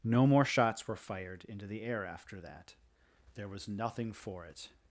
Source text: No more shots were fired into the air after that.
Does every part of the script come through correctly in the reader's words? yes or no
no